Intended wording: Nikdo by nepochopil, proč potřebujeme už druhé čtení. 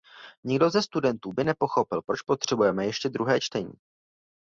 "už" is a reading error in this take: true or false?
true